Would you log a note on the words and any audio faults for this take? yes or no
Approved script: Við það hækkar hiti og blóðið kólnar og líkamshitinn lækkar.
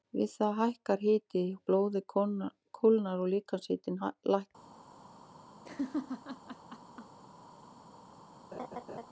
yes